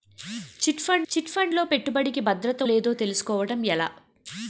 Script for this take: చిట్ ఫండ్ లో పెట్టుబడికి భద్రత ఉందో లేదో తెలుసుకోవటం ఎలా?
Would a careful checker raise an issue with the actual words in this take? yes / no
yes